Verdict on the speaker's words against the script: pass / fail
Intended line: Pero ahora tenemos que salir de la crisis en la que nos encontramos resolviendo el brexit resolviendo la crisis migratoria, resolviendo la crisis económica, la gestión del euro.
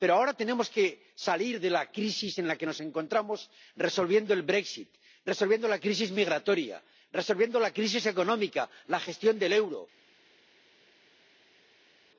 pass